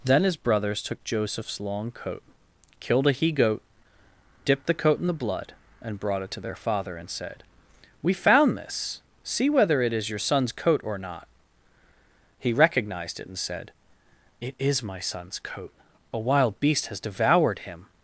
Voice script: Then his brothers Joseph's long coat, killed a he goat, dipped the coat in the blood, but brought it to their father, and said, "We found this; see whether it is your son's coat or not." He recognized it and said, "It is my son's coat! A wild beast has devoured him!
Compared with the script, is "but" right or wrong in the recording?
wrong